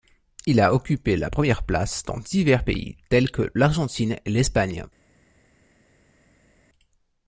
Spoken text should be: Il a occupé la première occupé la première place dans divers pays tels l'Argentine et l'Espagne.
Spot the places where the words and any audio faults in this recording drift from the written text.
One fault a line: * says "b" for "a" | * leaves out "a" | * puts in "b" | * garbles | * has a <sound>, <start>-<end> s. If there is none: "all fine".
* leaves out "occupé la première"
* puts in "que"